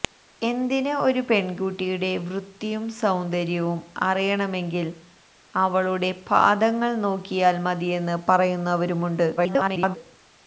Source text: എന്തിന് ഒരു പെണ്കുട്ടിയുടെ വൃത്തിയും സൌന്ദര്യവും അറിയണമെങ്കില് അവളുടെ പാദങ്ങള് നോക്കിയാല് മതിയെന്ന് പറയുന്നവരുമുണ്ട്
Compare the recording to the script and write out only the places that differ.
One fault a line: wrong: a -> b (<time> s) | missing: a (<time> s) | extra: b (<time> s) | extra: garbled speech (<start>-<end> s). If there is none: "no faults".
extra: garbled speech (9.4-10.0 s)